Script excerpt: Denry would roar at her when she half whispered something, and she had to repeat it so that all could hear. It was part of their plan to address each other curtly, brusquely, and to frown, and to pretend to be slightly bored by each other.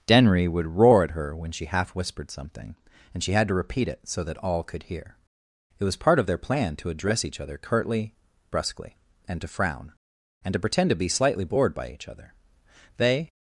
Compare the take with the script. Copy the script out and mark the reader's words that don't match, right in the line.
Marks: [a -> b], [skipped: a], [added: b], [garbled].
Denry would roar at her when she half whispered something, and she had to repeat it so that all could hear. It was part of their plan to address each other curtly, brusquely, and to frown, and to pretend to be slightly bored by each other. [added: They]